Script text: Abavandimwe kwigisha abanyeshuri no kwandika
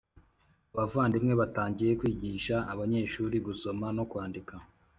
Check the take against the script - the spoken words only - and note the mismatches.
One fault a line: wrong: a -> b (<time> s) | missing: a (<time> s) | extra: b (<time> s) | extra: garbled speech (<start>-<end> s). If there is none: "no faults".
extra: batangiye (1.4 s)
extra: gusoma (3.5 s)